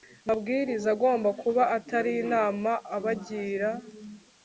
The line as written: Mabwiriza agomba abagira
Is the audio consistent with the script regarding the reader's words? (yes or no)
no